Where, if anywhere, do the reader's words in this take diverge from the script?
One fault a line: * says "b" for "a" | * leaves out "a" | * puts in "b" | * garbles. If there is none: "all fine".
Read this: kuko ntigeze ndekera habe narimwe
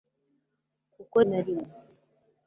* leaves out "ntigeze ndekera habe"